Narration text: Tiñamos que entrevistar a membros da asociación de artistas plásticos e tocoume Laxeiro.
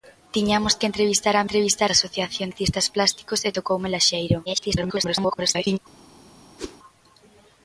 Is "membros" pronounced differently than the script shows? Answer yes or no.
yes